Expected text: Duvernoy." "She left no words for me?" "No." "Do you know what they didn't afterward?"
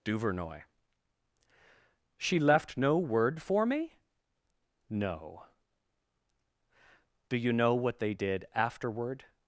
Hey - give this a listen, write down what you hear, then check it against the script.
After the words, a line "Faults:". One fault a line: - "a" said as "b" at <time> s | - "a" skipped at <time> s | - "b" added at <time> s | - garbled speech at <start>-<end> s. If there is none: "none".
Duvernoy." "She left no word for me?" "No." "Do you know what they did afterward?"
Faults:
- "words" said as "word" at 3.0 s
- "didn't" said as "did" at 8.1 s